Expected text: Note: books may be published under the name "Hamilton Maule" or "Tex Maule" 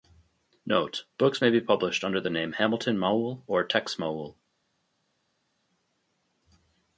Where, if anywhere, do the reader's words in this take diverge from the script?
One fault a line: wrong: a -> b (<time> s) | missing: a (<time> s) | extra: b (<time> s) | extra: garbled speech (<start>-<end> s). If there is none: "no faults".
no faults